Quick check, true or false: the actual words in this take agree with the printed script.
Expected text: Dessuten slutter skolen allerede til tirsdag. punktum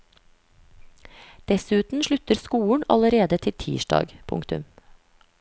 true